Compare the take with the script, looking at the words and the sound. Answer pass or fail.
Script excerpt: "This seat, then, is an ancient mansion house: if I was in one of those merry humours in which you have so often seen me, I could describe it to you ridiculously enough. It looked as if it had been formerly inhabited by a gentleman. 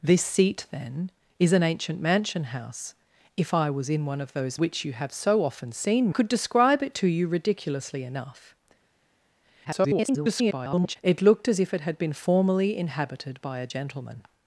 fail